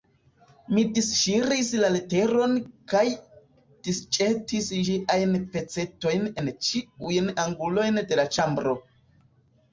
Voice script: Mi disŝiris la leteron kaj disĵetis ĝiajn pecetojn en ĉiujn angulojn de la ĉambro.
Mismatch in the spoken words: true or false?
false